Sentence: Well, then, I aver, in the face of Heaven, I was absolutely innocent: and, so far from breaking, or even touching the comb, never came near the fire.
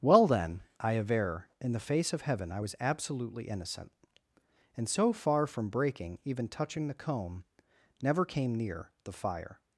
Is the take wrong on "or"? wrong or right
wrong